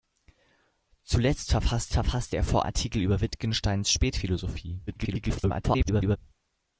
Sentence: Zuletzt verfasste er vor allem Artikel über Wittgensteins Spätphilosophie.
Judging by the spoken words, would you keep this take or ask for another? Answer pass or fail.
fail